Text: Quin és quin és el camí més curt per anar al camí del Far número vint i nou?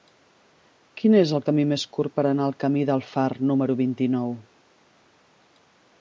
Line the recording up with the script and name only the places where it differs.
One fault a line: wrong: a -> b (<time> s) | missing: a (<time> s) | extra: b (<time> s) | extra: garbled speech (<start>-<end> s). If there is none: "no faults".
missing: quin és (1.3 s)